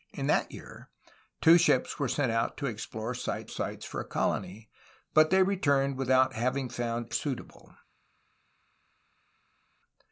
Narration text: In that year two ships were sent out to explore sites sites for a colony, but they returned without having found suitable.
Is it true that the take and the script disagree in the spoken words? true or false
false